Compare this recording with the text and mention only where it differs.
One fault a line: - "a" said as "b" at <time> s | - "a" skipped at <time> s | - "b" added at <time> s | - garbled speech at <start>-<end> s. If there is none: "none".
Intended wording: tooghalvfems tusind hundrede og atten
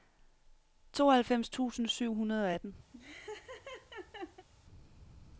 - "syv" added at 1.9 s